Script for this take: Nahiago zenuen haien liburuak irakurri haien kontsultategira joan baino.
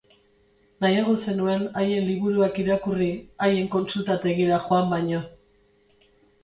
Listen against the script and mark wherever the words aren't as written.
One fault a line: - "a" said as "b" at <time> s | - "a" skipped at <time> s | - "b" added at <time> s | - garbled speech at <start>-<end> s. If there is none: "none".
none